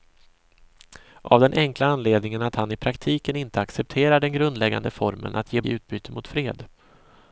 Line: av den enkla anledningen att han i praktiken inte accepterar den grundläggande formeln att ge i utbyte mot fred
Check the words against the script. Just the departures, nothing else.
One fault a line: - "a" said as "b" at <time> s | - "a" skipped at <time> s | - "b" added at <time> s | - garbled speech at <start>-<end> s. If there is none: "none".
none